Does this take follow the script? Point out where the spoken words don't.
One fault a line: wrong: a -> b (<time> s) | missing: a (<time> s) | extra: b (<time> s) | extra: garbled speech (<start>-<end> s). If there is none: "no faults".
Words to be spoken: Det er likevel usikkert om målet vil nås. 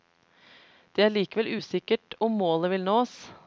no faults